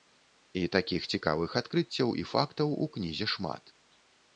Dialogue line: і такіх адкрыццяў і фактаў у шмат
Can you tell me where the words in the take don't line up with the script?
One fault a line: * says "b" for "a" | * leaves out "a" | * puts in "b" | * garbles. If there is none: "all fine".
* puts in "цікавых"
* puts in "кнізе"